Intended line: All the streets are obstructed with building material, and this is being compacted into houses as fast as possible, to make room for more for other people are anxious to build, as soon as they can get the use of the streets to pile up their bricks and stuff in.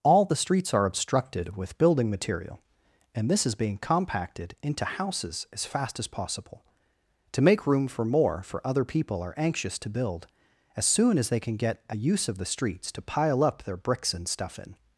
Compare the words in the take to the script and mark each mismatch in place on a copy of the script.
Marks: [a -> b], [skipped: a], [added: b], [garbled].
All the streets are obstructed with building material, and this is being compacted into houses as fast as possible, to make room for more for other people are anxious to build, as soon as they can get [the -> a] use of the streets to pile up their bricks and stuff in.